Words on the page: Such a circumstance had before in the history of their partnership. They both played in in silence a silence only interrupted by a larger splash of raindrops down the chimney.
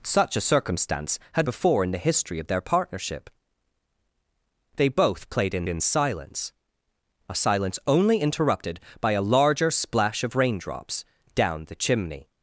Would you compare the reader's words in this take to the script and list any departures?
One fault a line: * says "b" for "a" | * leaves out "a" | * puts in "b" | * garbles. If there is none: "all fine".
all fine